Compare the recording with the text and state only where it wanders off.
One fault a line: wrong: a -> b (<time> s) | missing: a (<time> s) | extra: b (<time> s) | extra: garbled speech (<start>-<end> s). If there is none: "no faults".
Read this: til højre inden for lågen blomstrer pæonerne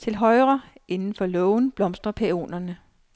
no faults